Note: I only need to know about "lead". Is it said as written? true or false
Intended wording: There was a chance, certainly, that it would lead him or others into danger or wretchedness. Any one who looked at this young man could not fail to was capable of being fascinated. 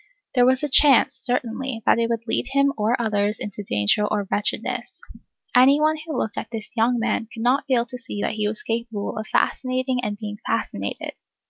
true